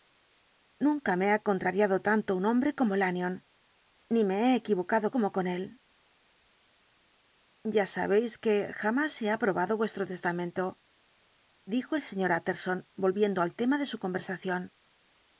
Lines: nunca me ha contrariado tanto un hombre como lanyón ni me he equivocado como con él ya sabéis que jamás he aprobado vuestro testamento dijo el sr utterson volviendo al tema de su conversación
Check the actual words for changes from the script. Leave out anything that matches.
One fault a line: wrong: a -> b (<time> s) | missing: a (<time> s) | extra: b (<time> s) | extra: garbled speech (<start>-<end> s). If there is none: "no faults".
no faults